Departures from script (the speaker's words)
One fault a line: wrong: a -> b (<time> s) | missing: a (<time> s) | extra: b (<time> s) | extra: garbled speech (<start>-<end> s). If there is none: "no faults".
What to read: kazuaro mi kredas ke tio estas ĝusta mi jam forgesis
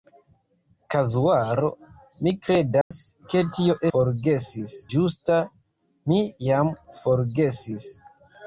wrong: estas -> forgesis (3.9 s)